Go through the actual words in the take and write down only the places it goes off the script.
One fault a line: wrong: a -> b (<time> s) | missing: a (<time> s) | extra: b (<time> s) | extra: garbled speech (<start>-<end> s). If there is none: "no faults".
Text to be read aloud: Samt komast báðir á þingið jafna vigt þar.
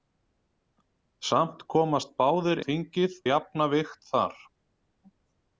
no faults